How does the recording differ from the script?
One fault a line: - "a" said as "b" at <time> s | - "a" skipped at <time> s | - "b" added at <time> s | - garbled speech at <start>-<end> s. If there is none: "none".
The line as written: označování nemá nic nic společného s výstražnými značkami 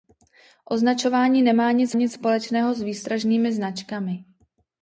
none